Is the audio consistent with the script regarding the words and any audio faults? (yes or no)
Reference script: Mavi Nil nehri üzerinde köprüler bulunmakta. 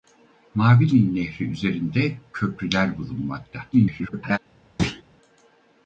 no